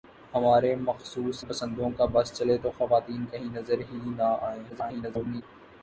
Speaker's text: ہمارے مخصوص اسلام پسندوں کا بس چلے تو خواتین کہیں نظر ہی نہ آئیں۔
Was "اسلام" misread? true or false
true